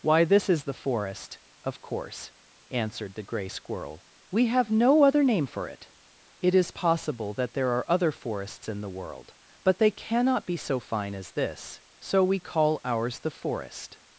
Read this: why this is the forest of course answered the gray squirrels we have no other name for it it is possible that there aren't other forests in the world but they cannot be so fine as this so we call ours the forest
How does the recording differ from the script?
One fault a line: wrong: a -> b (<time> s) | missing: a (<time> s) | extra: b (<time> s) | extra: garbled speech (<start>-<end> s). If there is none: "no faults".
wrong: squirrels -> squirrel (3.5 s)
wrong: aren't -> are (7.7 s)